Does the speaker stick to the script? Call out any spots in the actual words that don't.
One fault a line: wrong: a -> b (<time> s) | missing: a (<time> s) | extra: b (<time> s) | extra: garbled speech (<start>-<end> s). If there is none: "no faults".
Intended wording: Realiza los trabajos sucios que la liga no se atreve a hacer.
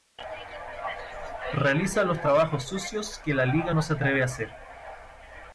no faults